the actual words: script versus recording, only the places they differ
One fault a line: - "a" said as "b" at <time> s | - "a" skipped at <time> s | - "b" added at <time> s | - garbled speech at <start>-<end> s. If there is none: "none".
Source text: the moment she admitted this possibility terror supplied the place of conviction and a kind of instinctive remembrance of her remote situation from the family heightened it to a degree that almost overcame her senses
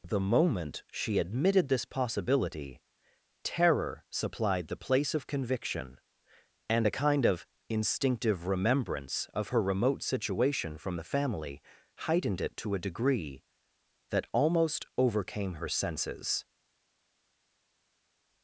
none